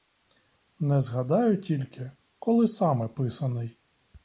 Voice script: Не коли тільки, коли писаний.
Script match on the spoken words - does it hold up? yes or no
no